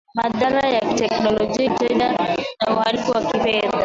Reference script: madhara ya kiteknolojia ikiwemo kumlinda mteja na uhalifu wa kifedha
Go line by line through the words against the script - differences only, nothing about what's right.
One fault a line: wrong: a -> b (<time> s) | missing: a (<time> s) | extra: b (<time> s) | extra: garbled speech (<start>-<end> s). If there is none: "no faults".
missing: ikiwemo kumlinda (1.7 s)